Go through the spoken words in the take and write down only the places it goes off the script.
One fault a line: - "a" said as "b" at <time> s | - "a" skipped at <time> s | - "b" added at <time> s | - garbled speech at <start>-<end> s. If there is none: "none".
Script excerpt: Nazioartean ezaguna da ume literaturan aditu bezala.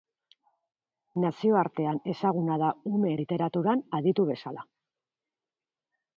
none